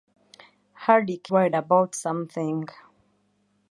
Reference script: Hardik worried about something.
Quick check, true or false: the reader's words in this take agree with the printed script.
true